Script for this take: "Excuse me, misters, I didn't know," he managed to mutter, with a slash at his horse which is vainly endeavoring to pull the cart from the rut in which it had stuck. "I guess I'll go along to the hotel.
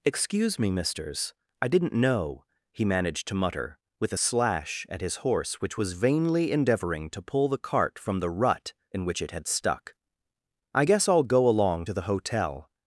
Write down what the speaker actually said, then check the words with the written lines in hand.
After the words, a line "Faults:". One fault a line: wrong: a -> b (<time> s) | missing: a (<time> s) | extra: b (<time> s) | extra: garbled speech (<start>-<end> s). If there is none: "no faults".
"Excuse me, misters, I didn't know," he managed to mutter, with a slash at his horse which was vainly endeavoring to pull the cart from the rut in which it had stuck. "I guess I'll go along to the hotel.
Faults:
wrong: is -> was (5.8 s)